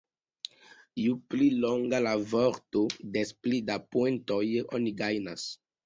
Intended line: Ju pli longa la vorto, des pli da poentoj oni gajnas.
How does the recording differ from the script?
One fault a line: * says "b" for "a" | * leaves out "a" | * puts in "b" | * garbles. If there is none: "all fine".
all fine